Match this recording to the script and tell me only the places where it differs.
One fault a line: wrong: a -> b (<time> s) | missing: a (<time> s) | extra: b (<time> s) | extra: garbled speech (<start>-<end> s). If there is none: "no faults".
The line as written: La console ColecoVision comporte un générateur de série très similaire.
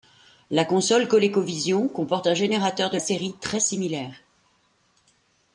no faults